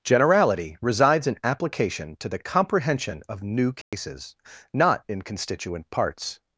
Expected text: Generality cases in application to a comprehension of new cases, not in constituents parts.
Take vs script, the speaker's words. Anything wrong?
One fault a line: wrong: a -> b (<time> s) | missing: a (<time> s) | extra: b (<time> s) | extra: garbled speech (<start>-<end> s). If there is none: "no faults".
wrong: cases -> resides (0.8 s)
wrong: a -> the (2.3 s)
wrong: constituents -> constituent (5.2 s)